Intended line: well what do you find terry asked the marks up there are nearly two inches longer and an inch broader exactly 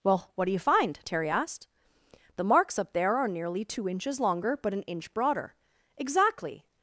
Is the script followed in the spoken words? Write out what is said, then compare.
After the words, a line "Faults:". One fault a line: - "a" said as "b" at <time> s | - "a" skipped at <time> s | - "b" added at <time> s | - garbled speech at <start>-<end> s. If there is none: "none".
well what do you find terry asked the marks up there are nearly two inches longer but an inch broader exactly
Faults:
- "and" said as "but" at 4.6 s